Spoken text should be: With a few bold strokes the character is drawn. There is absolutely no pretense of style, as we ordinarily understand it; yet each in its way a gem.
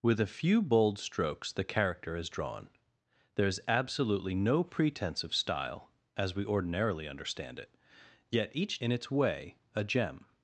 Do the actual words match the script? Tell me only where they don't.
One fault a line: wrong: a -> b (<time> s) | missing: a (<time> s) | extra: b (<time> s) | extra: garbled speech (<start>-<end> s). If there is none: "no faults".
no faults